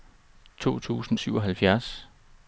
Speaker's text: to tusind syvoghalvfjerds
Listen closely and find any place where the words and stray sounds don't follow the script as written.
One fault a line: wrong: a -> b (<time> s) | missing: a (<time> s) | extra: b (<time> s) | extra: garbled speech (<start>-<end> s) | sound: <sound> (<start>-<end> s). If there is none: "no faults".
no faults